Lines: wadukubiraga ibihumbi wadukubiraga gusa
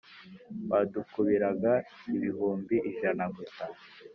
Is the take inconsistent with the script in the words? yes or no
yes